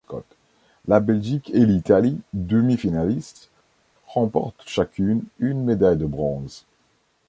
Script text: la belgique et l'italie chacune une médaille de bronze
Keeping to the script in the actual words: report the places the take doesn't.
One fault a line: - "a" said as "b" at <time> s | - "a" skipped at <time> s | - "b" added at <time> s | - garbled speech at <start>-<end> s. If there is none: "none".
- "demi finalistes remportent" added at 2.3 s